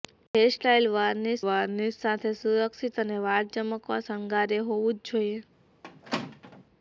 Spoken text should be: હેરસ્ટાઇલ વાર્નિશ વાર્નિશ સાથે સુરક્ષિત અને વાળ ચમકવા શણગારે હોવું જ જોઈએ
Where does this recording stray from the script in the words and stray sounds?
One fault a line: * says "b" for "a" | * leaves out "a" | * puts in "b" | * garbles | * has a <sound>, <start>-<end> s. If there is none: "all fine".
* has a squeak, 5.8-6.6 s